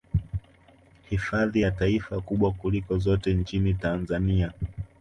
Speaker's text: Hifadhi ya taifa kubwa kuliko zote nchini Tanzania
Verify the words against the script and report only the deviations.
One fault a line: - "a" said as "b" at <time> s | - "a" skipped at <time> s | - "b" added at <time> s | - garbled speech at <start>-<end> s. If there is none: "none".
none